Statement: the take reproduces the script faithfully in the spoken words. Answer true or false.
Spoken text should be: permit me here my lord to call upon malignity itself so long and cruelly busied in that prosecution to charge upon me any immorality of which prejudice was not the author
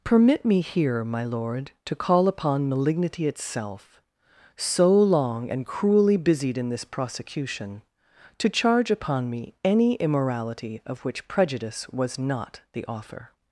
false